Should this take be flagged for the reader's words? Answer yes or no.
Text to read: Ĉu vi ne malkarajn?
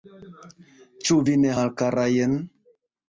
no